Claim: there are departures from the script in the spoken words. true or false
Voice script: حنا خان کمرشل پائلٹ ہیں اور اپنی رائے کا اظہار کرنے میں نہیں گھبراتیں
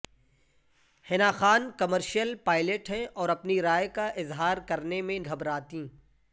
true